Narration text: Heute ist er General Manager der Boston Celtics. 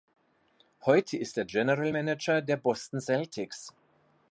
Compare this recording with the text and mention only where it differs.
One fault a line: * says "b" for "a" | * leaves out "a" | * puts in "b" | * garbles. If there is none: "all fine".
all fine